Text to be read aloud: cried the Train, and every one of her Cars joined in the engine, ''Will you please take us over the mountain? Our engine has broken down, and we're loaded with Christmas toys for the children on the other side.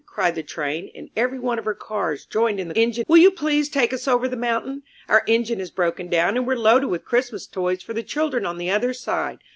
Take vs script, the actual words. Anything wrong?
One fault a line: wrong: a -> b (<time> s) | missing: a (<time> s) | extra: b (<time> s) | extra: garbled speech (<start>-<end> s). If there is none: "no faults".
no faults